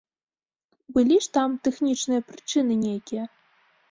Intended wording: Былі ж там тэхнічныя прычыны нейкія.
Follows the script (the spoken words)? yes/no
yes